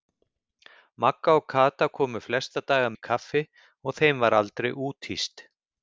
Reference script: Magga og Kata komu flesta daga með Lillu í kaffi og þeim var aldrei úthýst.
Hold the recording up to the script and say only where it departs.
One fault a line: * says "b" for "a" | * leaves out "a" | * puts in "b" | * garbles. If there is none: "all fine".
* leaves out "með Lillu"